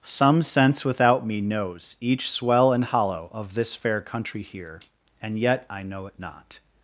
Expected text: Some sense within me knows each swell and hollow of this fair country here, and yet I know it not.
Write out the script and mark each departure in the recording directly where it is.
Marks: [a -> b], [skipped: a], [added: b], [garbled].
Some sense [within -> without] me knows each swell and hollow of this fair country here, and yet I know it not.